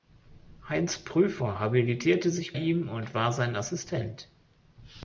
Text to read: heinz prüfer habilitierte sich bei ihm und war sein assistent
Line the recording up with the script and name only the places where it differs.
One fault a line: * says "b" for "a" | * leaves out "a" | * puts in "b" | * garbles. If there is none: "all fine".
* leaves out "bei"